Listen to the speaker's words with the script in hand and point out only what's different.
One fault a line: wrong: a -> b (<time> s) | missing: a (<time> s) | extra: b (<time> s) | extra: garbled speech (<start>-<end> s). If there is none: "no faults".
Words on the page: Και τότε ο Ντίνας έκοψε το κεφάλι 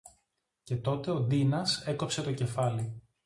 no faults